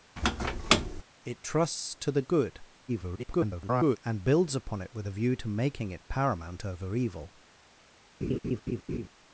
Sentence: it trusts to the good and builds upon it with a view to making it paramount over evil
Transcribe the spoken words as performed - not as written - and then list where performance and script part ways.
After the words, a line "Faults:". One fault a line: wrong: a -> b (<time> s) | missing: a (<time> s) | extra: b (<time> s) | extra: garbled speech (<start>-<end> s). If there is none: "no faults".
it trusts to the good [garbled] and builds upon it with a view to making it paramount over evil
Faults:
extra: garbled speech (2.9-4.0 s)